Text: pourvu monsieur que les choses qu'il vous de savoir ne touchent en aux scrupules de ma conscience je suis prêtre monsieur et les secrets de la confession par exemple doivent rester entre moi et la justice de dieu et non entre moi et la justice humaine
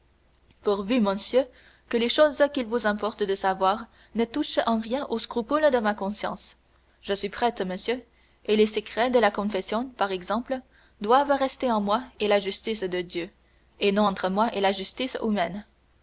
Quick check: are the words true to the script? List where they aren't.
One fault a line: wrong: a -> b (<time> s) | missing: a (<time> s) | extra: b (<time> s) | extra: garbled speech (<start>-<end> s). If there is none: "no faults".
extra: importe (2.9 s)
extra: rien (4.8 s)